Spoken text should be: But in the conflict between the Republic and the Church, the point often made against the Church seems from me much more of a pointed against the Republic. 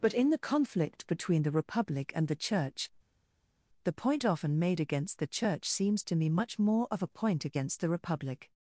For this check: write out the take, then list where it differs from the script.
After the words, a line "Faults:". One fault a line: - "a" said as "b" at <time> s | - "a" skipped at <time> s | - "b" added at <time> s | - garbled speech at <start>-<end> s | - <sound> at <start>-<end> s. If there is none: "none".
But in the conflict between the Republic and the Church, the point often made against the Church seems to me much more of a point against the Republic.
Faults:
- "from" said as "to" at 6.0 s
- "pointed" said as "point" at 7.1 s